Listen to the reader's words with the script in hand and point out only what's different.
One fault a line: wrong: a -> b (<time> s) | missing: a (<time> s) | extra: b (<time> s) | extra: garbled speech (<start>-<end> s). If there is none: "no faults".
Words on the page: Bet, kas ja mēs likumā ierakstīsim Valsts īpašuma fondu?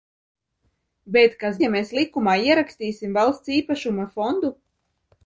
no faults